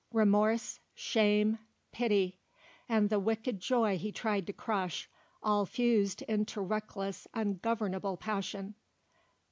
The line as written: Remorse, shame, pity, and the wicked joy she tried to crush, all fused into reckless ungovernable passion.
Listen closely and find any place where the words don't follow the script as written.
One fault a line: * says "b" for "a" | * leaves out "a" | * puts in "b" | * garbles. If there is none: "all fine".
* says "he" for "she"